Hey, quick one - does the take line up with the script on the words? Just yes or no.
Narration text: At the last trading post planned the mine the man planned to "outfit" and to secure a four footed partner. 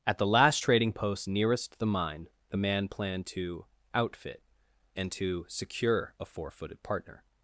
no